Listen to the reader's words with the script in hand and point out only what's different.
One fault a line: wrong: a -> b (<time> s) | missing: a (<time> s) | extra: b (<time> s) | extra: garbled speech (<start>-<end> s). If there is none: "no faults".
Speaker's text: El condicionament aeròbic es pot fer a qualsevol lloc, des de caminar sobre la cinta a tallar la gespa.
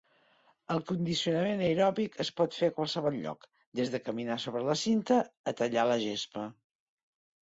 no faults